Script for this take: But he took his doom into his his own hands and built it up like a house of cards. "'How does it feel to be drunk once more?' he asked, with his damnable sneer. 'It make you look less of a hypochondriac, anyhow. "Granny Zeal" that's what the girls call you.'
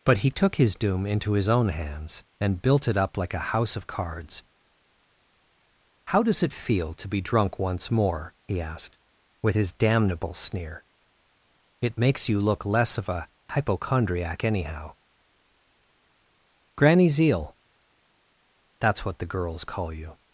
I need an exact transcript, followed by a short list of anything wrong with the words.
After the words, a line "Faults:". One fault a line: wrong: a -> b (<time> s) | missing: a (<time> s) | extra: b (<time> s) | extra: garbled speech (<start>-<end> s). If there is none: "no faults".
But he took his doom into his own hands and built it up like a house of cards. "'How does it feel to be drunk once more?' he asked, with his damnable sneer. 'It makes you look less of a hypochondriac, anyhow. "Granny Zeal" that's what the girls call you.'
Faults:
missing: his (1.5 s)
wrong: make -> makes (12.0 s)